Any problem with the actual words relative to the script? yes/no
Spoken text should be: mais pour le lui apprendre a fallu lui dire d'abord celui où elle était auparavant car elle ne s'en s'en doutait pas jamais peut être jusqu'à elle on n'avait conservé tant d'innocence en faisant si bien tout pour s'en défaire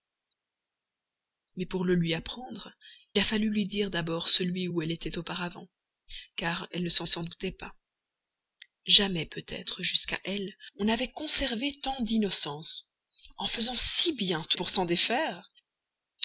no